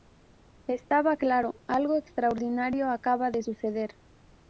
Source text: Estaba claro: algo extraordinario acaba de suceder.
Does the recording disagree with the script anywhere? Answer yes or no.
no